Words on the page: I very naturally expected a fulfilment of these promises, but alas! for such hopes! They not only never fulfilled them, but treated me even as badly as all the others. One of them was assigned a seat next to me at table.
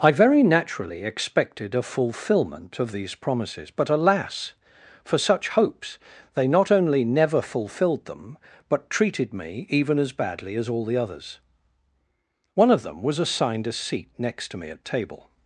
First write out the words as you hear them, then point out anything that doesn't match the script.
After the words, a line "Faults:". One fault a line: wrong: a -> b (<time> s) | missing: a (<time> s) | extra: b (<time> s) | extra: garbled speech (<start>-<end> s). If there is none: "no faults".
I very naturally expected a fulfilment of these promises, but alas! for such hopes! They not only never fulfilled them, but treated me even as badly as all the others. One of them was assigned a seat next to me at table.
Faults:
no faults